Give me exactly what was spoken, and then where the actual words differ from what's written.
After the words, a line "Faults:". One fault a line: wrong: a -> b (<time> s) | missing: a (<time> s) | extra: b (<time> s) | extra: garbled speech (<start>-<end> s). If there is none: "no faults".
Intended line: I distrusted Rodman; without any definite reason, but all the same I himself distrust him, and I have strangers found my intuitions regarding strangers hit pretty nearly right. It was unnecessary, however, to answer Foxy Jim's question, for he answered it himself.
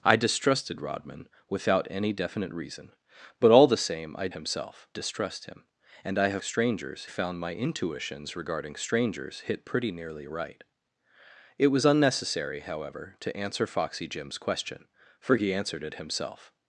I distrusted Rodman; without any definite reason, but all the same I himself distrust him, and I have strangers found my intuitions regarding strangers hit pretty nearly right. It was unnecessary, however, to answer Foxy Jim's question, for he answered it himself.
Faults:
no faults